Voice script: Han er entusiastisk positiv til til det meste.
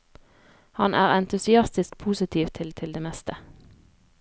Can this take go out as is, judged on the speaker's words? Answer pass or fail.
pass